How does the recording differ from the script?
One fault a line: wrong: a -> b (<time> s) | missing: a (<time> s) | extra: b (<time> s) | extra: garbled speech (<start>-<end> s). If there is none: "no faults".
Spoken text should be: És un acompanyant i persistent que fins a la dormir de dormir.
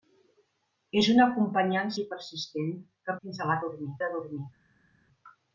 no faults